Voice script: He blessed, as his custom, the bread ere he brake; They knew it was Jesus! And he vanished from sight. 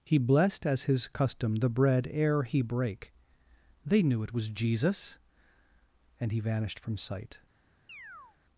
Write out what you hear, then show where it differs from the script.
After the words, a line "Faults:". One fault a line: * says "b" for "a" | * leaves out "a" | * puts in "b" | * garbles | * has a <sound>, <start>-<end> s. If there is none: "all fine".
He blessed, as his custom, the bread ere he brake; They knew it was Jesus! And he vanished from sight.
Faults:
* has a chirp, 7.9-8.4 s